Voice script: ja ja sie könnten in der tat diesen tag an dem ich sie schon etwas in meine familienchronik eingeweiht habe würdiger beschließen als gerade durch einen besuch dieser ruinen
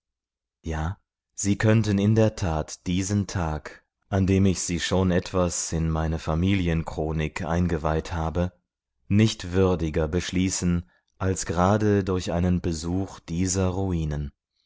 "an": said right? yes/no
yes